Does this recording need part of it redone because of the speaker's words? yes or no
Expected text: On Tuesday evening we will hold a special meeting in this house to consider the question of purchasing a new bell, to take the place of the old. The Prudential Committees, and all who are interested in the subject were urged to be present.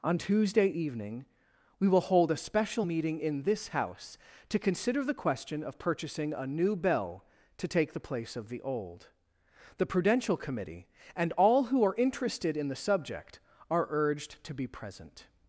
yes